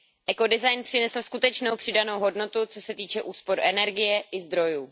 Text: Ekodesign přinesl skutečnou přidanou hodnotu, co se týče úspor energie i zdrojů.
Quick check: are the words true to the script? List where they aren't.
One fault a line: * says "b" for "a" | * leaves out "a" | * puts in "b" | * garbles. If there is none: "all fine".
all fine